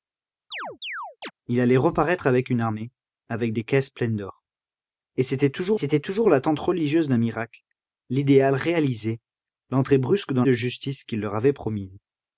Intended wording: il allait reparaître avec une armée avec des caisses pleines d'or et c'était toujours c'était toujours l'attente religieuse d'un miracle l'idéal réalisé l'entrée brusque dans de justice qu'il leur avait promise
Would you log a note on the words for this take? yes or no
no